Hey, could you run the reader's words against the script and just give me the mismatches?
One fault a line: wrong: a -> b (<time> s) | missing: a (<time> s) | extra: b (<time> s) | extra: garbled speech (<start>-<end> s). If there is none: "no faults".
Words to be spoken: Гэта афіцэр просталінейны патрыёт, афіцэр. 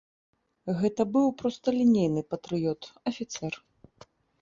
wrong: афіцэр -> быў (1.2 s)